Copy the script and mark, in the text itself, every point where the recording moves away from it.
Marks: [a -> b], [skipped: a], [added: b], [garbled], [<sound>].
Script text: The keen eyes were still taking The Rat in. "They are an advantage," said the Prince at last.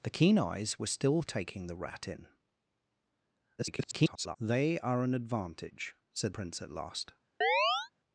The keen eyes were still taking The Rat in. [garbled] "They are an advantage," said [skipped: the] Prince at last. [chirp]